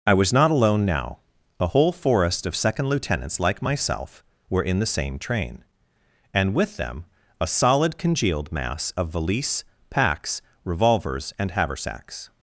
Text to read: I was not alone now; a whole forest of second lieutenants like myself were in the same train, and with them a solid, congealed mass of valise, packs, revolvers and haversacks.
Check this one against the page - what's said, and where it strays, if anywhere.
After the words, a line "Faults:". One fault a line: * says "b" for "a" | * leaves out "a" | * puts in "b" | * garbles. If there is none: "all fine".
I was not alone now; a whole forest of second lieutenants like myself were in the same train, and with them a solid, congealed mass of valise, packs, revolvers and haversacks.
Faults:
all fine